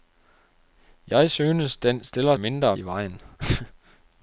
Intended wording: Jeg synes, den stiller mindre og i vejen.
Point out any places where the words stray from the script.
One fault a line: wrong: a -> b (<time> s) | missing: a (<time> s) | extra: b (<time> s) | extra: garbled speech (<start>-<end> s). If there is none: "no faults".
no faults